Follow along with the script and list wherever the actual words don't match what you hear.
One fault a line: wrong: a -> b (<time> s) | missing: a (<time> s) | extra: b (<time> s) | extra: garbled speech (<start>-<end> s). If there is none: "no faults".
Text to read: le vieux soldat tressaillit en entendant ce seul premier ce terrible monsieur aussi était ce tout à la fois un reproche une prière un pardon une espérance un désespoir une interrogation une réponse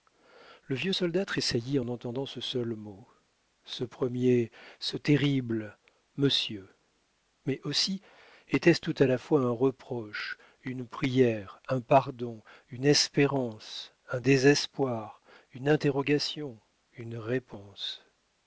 extra: mot ce (2.7 s)
extra: mais (7.5 s)